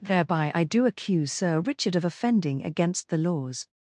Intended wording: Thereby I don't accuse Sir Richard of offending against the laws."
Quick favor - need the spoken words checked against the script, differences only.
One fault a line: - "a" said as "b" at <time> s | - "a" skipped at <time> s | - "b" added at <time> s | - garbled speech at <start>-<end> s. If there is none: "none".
- "don't" said as "do" at 0.6 s